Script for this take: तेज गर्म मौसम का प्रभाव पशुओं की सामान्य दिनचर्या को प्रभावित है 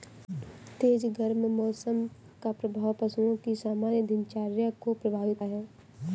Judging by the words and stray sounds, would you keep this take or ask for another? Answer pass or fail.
pass